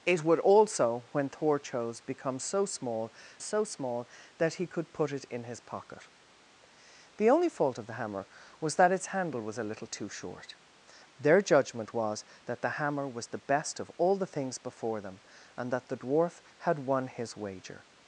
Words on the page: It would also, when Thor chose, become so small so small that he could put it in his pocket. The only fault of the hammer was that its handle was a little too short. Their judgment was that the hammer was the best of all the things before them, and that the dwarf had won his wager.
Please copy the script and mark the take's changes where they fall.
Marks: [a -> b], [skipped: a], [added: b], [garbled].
It would also, when Thor chose, become so small so small that he could put it in his pocket. The only fault of the hammer was that its handle was a little too short. Their judgment was that the hammer was the best of all the things before them, and that the dwarf had won his wager.